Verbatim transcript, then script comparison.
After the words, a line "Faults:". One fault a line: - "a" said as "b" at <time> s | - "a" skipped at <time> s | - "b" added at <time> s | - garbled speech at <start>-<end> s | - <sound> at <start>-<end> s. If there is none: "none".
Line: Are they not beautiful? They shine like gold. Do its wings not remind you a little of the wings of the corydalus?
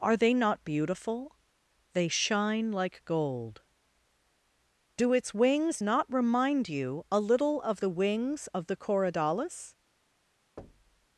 Are they not beautiful? They shine like gold. Do its wings not remind you a little of the wings of the corydalus?
Faults:
- thud at 10.6-11.1 s